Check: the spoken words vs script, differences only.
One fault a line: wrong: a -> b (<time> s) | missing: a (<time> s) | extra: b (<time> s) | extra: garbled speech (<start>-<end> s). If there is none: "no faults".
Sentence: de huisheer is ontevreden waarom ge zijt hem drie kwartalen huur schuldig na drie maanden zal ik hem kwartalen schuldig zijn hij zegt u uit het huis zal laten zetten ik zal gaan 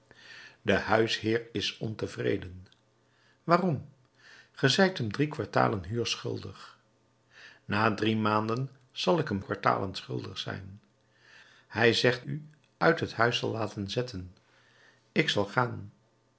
no faults